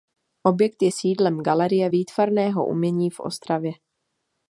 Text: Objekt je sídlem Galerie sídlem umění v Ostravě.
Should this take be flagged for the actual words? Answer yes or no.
yes